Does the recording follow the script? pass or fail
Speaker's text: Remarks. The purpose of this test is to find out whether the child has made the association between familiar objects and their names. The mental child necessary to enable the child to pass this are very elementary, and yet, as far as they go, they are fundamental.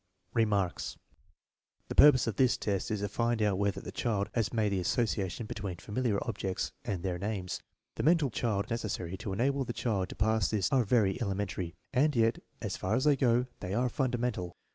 pass